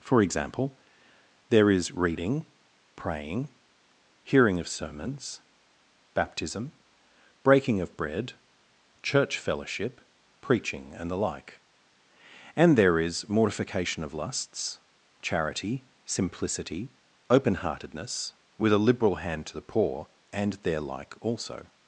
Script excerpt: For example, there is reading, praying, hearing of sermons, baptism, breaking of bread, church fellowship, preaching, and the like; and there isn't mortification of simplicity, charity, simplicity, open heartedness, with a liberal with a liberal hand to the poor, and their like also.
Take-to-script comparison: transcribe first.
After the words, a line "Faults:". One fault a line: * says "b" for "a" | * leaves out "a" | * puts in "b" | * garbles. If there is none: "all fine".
For example, there is reading, praying, hearing of sermons, baptism, breaking of bread, church fellowship, preaching, and the like; and there is mortification of lusts, charity, simplicity, open heartedness, with a liberal hand to the poor, and their like also.
Faults:
* says "is" for "isn't"
* says "lusts" for "simplicity"
* leaves out "with a liberal"